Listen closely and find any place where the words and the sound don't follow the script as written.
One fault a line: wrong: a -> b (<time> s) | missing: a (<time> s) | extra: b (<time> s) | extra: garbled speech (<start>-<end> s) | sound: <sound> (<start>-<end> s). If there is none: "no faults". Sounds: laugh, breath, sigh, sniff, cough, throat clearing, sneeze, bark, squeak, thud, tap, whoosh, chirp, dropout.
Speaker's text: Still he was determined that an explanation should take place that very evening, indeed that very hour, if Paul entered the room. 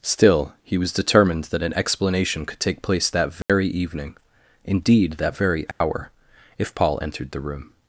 wrong: should -> could (2.5 s)
sound: dropout (3.4-3.5 s)
sound: dropout (5.7-5.8 s)